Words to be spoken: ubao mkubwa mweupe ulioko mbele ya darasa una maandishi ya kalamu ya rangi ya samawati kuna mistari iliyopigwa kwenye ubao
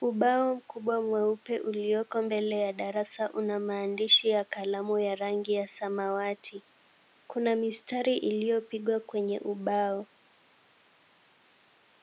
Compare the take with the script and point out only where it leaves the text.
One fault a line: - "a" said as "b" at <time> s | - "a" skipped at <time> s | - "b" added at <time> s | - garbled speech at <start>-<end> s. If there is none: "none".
none